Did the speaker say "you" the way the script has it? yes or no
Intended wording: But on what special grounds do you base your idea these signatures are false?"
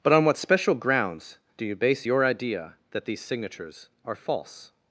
yes